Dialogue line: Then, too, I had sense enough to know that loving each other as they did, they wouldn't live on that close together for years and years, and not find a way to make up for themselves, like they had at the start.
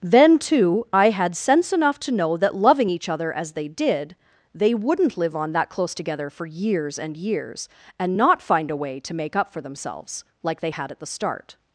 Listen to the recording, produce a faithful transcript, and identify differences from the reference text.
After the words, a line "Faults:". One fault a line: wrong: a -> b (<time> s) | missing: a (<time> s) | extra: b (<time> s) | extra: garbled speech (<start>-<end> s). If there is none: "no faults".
Then, too, I had sense enough to know that loving each other as they did, they wouldn't live on that close together for years and years, and not find a way to make up for themselves, like they had at the start.
Faults:
no faults